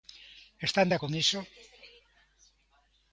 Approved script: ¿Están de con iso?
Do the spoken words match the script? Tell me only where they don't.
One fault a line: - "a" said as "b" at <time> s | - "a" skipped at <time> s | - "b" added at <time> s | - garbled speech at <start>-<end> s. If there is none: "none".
none